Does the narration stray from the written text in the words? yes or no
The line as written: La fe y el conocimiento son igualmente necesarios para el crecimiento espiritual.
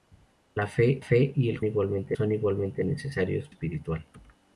yes